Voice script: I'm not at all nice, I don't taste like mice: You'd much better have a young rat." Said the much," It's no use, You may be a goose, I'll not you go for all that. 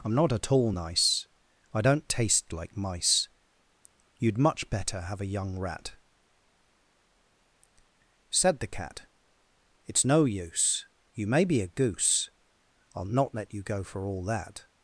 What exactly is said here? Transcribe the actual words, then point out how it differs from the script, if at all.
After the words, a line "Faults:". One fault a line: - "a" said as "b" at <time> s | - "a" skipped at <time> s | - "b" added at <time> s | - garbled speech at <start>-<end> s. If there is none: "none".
I'm not at all nice, I don't taste like mice: You'd much better have a young rat." Said the cat," It's no use, You may be a goose, I'll not let you go for all that.
Faults:
- "much" said as "cat" at 8.7 s
- "let" added at 13.3 s